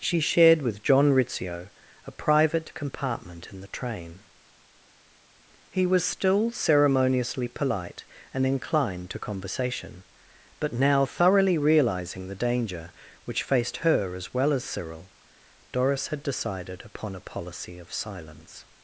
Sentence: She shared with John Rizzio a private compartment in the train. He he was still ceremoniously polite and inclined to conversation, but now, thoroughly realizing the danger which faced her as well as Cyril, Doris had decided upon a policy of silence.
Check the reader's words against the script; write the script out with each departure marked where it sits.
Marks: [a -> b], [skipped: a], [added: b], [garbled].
She shared with John Rizzio a private compartment in the train. He [skipped: he] was still ceremoniously polite and inclined to conversation, but now, thoroughly realizing the danger which faced her as well as Cyril, Doris had decided upon a policy of silence.